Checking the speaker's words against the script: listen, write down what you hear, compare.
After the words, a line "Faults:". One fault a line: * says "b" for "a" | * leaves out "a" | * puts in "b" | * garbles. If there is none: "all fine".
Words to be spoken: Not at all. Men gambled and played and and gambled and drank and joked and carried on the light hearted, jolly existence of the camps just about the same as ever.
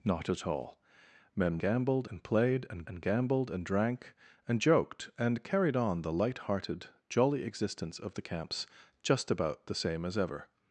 Not at all. Men gambled and played and and gambled and drank and joked and carried on the light hearted, jolly existence of the camps just about the same as ever.
Faults:
all fine